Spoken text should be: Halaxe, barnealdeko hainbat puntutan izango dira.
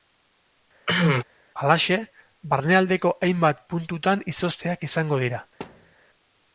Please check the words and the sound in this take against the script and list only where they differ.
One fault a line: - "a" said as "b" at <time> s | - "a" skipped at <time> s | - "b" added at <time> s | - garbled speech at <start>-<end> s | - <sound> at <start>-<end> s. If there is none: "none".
- cough at 0.9-1.2 s
- "izozteak" added at 4.4 s
- thud at 5.6-6.0 s